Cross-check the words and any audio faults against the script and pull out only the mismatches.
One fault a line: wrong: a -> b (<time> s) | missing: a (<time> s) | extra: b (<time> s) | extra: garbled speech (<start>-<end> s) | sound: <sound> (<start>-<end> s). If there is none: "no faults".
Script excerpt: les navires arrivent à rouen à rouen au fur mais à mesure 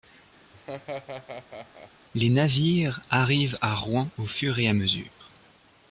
sound: laugh (0.5-1.9 s)
missing: à rouen (4.1 s)
wrong: mais -> et (4.6 s)